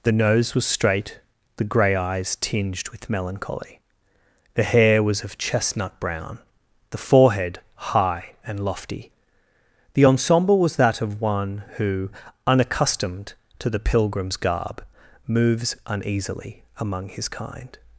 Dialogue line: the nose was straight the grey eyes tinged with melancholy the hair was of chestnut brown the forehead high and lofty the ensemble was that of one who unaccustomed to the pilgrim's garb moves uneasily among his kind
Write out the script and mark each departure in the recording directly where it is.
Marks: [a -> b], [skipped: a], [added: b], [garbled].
the nose was straight the grey eyes tinged with melancholy the hair was of chestnut brown the forehead high and lofty the ensemble was that of one who unaccustomed to the pilgrim's garb moves uneasily among his kind